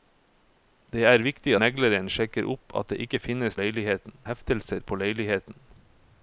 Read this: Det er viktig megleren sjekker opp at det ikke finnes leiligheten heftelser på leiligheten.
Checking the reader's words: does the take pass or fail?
pass